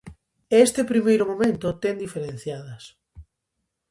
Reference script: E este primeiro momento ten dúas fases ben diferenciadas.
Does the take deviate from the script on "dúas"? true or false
true